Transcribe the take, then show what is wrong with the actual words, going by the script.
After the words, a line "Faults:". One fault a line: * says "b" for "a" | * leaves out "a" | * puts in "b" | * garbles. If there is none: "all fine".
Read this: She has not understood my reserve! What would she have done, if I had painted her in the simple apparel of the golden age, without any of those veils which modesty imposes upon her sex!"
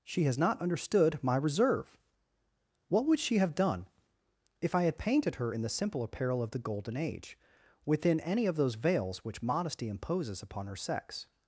She has not understood my reserve! What would she have done, if I had painted her in the simple apparel of the golden age, within any of those veils which modesty imposes upon her sex!"
Faults:
* says "within" for "without"